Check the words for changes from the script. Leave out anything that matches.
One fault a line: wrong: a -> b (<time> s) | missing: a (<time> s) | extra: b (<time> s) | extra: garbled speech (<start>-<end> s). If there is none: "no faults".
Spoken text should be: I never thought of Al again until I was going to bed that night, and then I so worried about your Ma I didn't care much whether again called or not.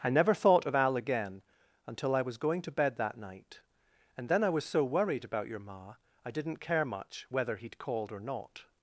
extra: was (4.5 s)
wrong: again -> he'd (7.6 s)